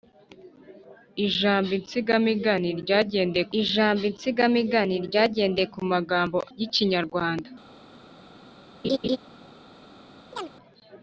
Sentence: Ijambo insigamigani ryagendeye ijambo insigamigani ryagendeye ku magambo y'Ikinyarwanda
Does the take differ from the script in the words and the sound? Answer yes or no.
yes